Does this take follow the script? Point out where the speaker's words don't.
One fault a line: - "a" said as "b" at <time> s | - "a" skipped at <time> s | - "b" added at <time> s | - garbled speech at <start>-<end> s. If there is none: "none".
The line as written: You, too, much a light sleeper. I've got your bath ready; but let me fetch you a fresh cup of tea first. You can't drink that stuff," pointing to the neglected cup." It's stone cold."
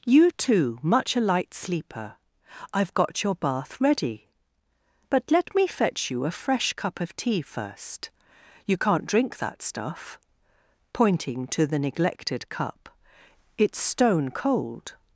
none